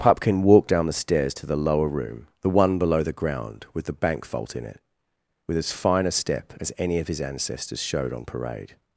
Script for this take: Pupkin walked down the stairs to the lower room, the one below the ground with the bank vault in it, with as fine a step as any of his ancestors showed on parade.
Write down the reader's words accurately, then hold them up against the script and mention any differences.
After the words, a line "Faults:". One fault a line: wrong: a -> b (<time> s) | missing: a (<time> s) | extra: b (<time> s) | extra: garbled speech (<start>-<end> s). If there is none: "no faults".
Pupkin walked down the stairs to the lower room, the one below the ground with the bank vault in it, with as fine a step as any of his ancestors showed on parade.
Faults:
no faults